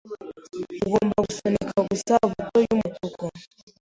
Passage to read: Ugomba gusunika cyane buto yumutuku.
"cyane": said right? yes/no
no